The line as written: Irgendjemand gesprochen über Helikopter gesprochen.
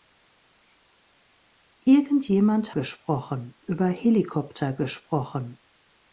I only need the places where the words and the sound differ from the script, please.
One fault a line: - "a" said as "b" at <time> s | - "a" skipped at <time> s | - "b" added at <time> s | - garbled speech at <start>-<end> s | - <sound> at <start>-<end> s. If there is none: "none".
none